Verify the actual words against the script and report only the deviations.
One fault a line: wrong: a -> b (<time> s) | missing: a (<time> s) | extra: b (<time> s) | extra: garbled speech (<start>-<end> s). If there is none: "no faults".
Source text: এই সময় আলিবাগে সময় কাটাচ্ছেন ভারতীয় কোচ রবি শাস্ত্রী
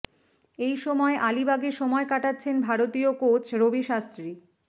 no faults